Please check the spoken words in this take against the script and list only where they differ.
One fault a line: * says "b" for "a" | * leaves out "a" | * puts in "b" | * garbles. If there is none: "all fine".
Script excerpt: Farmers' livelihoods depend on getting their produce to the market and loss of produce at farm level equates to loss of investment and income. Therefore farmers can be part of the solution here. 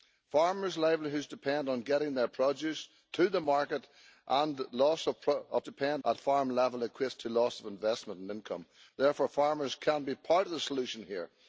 * says "depend" for "produce"